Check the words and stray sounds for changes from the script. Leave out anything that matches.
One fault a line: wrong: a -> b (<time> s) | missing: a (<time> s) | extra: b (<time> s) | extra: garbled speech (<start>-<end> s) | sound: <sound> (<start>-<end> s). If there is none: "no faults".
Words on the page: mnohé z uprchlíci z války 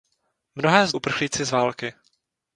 no faults